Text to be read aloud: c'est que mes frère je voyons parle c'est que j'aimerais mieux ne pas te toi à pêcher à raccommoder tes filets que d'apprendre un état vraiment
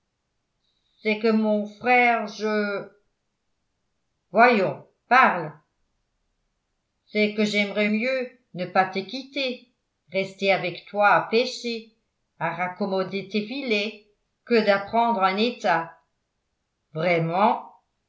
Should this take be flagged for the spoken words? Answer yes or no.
yes